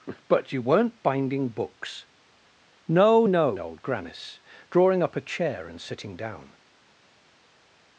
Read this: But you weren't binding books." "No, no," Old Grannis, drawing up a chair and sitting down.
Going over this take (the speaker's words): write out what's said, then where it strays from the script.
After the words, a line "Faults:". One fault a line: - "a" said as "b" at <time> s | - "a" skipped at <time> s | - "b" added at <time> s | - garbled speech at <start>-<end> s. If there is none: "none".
But you weren't binding books." "No, no," Old Grannis, drawing up a chair and sitting down.
Faults:
none